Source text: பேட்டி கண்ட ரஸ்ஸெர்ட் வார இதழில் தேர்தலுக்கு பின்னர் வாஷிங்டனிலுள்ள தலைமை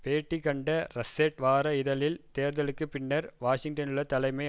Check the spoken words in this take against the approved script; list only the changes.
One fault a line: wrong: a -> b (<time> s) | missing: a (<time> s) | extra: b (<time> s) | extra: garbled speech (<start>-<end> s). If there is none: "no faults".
no faults